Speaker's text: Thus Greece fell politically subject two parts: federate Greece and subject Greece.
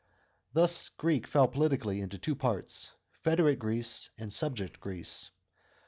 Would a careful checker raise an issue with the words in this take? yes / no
yes